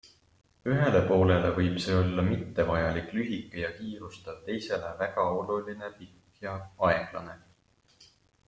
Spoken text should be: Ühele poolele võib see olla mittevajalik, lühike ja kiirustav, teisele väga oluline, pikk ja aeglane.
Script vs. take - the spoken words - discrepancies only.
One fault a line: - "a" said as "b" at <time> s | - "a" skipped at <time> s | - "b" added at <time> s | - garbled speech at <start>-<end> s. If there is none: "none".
none